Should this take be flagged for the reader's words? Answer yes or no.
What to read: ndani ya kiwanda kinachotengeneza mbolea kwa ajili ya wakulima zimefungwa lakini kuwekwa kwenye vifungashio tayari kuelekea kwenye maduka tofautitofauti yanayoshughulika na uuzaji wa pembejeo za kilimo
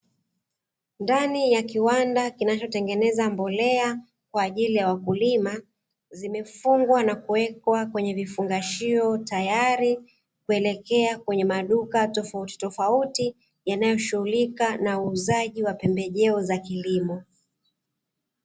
yes